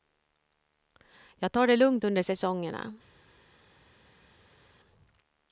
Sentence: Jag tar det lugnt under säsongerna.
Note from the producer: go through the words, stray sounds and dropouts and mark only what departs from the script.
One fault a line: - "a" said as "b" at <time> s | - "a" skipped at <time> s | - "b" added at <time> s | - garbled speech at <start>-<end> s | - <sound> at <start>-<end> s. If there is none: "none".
none